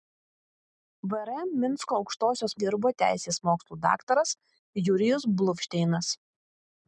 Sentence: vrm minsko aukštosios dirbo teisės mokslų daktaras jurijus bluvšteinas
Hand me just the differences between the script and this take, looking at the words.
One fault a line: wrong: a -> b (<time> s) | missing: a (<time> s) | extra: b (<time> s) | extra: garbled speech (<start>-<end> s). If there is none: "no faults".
no faults